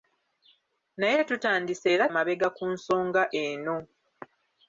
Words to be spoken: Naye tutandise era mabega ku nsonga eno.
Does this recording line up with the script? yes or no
yes